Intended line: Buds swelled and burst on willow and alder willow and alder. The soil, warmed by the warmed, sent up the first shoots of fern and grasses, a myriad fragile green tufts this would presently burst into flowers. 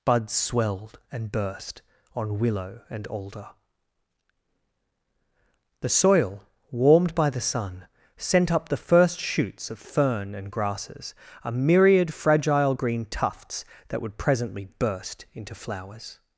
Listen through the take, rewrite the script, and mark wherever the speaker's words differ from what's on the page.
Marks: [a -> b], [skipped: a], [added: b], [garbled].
Buds swelled and burst on willow and alder [skipped: willow and alder.] The soil, warmed by the [warmed, -> sun] sent up the first shoots of fern and grasses, a myriad fragile green tufts [this -> that] would presently burst into flowers.